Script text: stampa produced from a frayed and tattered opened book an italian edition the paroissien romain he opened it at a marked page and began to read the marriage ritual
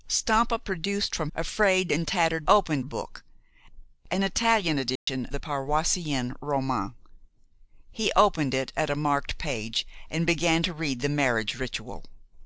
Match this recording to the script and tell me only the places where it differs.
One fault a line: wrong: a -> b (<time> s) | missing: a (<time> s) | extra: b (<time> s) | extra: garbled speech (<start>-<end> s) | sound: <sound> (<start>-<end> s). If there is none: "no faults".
sound: dropout (5.0-5.1 s)